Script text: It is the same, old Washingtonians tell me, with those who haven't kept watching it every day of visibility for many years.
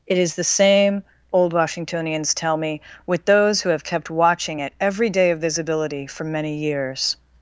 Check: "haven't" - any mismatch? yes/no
yes